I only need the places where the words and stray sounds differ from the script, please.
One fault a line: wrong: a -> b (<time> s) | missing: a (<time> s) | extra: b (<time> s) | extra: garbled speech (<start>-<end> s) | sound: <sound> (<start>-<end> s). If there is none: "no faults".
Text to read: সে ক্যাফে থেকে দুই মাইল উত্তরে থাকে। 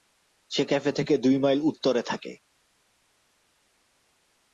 no faults